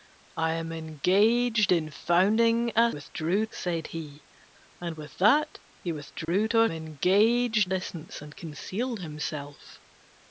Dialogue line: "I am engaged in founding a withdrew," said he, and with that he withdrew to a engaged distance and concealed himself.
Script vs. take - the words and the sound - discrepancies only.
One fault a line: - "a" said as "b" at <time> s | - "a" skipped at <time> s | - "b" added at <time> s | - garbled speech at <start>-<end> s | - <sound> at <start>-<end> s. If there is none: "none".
- dropout at 6.2-6.3 s